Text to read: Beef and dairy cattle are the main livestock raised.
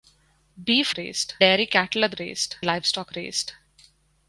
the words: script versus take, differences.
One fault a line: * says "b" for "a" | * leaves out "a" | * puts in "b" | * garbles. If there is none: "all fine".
* says "raised" for "and"
* says "raised" for "main"